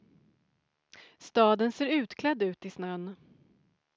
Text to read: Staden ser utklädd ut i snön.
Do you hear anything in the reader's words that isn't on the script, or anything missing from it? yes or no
no